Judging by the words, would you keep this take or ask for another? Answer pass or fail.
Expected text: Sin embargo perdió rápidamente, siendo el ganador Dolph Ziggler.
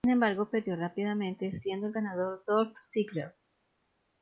pass